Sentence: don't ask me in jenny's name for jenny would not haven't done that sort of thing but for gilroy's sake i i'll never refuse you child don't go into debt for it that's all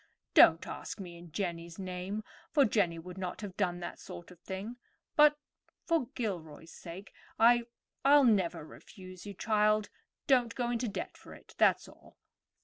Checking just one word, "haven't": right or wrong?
wrong